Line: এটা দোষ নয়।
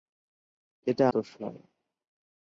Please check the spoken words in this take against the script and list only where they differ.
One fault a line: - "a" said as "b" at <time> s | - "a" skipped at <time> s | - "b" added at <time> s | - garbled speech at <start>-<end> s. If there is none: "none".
none